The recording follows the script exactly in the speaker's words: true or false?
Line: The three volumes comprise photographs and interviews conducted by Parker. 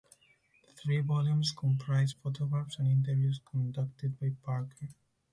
true